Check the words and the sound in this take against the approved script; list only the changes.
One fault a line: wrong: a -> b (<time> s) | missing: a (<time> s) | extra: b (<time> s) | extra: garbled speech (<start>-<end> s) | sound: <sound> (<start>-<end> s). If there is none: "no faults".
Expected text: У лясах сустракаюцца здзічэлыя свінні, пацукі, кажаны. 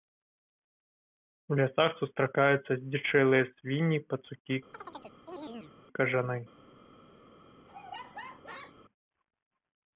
sound: chirp (4.7-5.8 s)
sound: laugh (7.7-8.8 s)